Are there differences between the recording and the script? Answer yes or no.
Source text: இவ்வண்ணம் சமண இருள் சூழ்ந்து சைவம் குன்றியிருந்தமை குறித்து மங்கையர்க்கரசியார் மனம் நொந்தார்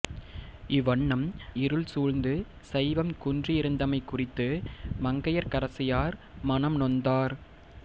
yes